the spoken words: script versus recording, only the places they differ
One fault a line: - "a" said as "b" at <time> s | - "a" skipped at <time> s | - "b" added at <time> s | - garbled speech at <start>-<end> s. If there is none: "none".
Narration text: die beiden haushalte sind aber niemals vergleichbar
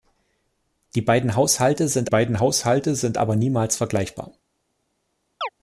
- "beiden haushalte sind" added at 2.1 s